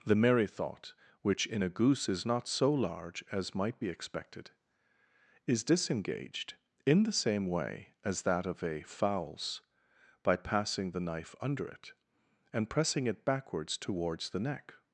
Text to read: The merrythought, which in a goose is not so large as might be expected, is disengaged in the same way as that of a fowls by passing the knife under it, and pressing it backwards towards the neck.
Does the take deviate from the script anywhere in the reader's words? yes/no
no